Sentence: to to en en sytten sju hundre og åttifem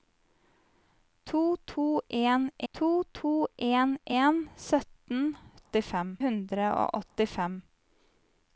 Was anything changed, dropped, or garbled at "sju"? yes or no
yes